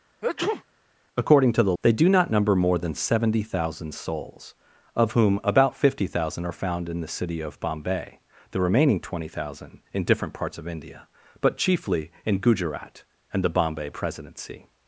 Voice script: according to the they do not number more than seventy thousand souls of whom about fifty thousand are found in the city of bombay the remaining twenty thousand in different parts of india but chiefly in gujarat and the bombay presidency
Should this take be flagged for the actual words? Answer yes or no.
no